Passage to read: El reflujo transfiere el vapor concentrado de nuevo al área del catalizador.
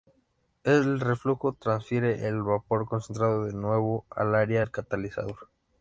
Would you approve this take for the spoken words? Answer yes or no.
yes